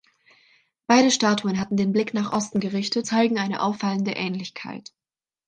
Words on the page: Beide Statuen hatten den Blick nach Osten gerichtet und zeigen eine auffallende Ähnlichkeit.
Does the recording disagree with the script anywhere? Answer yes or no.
yes